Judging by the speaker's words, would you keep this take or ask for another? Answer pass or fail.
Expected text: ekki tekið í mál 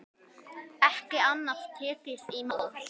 fail